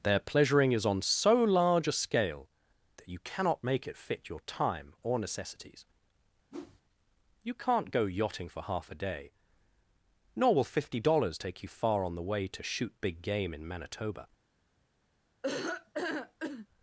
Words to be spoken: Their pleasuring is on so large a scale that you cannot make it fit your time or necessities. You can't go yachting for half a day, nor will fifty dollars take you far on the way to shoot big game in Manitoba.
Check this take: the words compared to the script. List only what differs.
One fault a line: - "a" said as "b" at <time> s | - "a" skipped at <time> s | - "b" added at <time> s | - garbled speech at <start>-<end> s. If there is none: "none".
none